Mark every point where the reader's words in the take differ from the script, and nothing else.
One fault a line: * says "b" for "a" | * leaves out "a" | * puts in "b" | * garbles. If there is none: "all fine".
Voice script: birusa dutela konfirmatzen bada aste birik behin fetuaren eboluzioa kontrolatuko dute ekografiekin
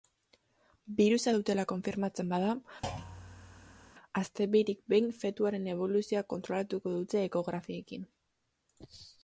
all fine